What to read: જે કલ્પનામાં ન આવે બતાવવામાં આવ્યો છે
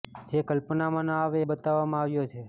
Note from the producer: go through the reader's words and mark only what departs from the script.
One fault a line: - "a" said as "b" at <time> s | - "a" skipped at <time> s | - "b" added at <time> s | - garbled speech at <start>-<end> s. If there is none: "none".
none